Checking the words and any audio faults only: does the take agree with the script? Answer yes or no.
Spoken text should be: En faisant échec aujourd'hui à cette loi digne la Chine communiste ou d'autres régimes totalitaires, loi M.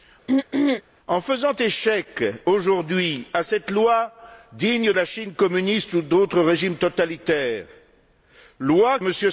no